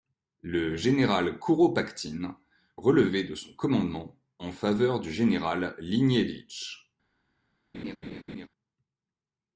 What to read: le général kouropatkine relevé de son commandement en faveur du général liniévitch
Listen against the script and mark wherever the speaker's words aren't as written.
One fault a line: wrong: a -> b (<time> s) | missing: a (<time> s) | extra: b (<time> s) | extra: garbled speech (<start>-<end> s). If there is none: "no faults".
no faults